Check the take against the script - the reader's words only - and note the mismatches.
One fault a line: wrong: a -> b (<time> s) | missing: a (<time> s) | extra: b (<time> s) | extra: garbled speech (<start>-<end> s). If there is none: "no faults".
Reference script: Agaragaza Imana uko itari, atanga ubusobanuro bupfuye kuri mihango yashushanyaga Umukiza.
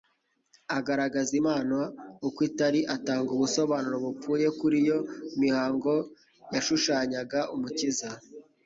extra: iyo (4.8 s)